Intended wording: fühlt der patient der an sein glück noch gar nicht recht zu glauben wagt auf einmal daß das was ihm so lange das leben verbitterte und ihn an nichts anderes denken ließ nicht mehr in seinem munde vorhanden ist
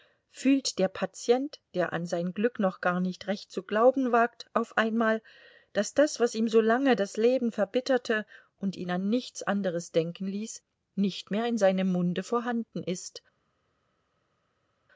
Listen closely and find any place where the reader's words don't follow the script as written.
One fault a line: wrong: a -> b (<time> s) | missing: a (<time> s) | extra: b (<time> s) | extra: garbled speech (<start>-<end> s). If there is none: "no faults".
no faults